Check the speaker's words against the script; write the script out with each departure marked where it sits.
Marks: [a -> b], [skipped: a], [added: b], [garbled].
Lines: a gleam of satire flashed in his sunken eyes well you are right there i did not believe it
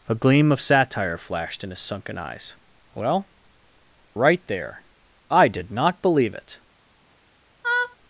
a gleam of satire flashed in his sunken eyes well [skipped: you are] right there i did not believe it